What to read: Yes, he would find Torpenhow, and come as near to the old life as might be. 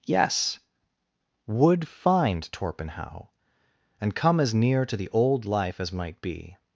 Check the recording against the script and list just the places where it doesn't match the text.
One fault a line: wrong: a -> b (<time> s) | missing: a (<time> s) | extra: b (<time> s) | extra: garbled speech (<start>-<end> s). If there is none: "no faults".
missing: he (0.6 s)